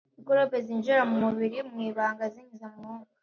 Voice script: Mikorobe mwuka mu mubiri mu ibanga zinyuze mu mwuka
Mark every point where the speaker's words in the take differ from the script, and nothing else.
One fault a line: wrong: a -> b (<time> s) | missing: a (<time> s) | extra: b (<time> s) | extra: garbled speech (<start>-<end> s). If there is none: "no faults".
wrong: mwuka -> zinjira (0.7 s)